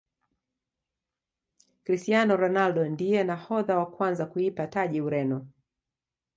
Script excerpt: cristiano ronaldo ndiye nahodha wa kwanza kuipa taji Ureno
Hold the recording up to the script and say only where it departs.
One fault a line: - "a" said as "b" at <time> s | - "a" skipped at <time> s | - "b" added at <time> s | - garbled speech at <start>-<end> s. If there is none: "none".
none